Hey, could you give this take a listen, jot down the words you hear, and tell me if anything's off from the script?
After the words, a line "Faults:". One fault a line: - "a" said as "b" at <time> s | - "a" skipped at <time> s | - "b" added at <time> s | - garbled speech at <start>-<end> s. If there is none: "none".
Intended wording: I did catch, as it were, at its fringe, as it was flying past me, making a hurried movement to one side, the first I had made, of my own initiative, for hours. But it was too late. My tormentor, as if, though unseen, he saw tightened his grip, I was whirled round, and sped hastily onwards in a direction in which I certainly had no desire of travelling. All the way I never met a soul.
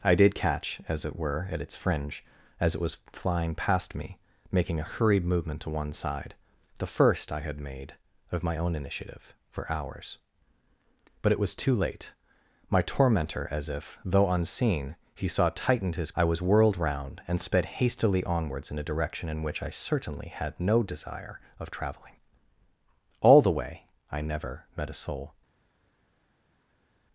I did catch, as it were, at its fringe, as it was flying past me, making a hurried movement to one side, the first I had made, of my own initiative, for hours. But it was too late. My tormentor, as if, though unseen, he saw tightened his I was whirled round, and sped hastily onwards in a direction in which I certainly had no desire of travelling. All the way I never met a soul.
Faults:
- "grip" skipped at 16.1 s